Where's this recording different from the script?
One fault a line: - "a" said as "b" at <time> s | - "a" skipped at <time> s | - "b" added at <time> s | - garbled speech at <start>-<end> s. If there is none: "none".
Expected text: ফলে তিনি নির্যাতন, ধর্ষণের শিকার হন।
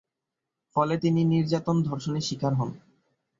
none